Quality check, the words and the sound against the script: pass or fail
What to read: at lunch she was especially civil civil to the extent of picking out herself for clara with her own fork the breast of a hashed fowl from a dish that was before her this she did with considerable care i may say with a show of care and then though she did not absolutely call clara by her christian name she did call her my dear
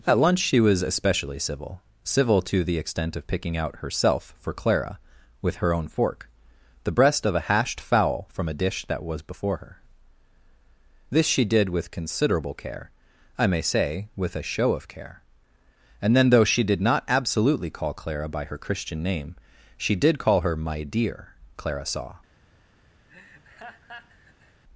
fail